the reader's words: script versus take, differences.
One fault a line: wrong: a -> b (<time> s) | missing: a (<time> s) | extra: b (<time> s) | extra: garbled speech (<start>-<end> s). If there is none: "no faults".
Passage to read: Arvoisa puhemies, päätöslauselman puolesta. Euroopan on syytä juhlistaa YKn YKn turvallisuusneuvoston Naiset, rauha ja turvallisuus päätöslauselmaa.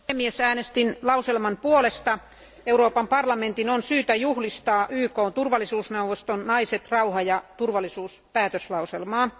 extra: äänestin (0.4 s)
extra: parlamentin (3.1 s)
missing: YKn (5.3 s)